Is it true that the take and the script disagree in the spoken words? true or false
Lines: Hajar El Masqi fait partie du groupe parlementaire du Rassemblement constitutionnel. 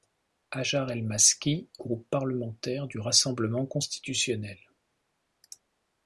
true